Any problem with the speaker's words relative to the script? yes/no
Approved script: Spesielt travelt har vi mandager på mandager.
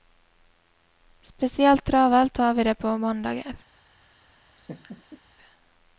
yes